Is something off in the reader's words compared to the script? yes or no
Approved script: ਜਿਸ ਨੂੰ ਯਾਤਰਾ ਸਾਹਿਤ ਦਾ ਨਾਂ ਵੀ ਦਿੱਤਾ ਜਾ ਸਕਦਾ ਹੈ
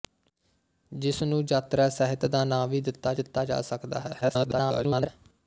yes